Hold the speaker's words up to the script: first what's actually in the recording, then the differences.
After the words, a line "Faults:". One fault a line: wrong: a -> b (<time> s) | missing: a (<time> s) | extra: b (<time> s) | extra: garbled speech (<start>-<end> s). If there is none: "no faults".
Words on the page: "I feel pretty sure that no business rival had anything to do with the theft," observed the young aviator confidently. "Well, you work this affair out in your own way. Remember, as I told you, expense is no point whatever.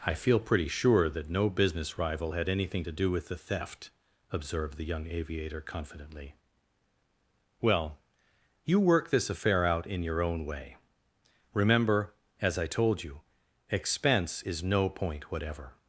"I feel pretty sure that no business rival had anything to do with the theft," observed the young aviator confidently. "Well, you work this affair out in your own way. Remember, as I told you, expense is no point whatever.
Faults:
no faults